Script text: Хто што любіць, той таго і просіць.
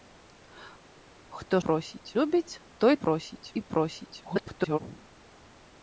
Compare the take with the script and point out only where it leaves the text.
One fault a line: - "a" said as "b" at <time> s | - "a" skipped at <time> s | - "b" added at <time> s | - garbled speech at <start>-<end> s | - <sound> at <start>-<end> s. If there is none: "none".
- "што" said as "просіць" at 1.7 s
- "таго" said as "просіць" at 3.1 s
- garbled speech at 4.2-4.8 s